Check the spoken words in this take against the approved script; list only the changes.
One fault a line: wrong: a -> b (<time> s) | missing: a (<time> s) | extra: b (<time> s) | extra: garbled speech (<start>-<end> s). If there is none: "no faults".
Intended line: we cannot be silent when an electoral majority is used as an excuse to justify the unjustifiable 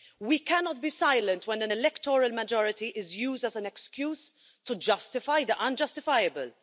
no faults